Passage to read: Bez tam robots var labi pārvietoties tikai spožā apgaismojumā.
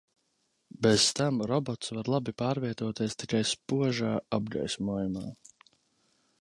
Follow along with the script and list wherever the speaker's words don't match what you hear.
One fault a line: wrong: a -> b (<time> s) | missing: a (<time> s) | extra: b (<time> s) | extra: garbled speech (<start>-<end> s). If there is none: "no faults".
no faults